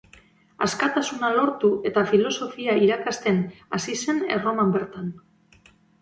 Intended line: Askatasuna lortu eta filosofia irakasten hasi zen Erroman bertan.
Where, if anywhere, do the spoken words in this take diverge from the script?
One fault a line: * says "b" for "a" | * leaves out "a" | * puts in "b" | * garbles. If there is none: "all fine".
all fine